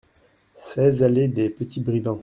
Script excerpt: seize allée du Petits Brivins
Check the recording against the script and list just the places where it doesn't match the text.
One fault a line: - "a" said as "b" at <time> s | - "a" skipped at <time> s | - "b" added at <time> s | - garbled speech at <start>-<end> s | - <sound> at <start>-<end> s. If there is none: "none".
- "du" said as "des" at 1.3 s